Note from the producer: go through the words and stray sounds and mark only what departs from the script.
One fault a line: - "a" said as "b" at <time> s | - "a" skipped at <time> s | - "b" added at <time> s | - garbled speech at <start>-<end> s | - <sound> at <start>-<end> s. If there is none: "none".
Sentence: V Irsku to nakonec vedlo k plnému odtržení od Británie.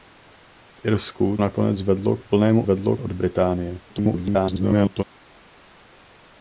- "to" skipped at 1.4 s
- "odtržení" said as "vedlo" at 2.6 s
- garbled speech at 3.9-5.0 s